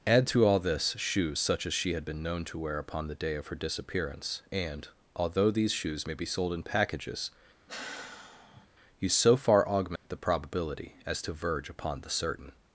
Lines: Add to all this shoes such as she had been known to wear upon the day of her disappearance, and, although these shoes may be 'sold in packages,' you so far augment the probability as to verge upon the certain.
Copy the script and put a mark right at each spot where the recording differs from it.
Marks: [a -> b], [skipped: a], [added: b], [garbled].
Add to all this shoes such as she had been known to wear upon the day of her disappearance, and, although these shoes may be 'sold in packages,' you so far augment the probability as to verge upon the certain.